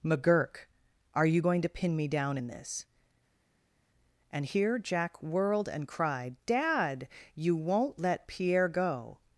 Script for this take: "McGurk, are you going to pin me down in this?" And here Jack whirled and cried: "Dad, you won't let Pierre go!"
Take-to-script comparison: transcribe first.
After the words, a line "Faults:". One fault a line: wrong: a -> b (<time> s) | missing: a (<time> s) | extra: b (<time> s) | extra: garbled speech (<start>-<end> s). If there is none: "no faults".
"McGurk, are you going to pin me down in this?" And here Jack whirled and cried: "Dad, you won't let Pierre go!"
Faults:
no faults